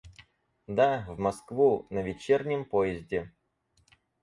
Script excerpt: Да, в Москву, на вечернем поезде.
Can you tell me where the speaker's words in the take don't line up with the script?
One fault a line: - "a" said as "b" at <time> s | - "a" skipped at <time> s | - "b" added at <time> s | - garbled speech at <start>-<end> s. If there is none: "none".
none